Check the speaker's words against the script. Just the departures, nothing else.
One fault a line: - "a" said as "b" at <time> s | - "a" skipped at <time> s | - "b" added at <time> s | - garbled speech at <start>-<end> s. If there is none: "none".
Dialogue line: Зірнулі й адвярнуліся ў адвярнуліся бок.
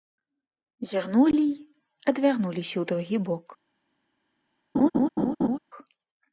- "адвярнуліся" said as "другі" at 2.9 s